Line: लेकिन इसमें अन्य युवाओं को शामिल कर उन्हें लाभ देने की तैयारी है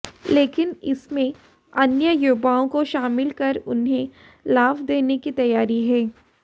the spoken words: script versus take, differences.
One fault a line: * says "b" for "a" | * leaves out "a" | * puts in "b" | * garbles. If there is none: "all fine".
all fine